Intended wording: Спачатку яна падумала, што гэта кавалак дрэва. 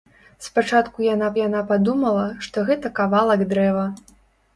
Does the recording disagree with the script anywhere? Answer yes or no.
yes